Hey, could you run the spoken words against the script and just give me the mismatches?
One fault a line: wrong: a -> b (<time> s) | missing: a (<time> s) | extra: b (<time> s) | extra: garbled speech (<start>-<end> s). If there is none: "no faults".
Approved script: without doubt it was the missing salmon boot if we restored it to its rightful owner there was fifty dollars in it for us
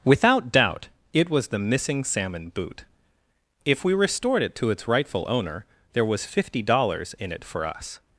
no faults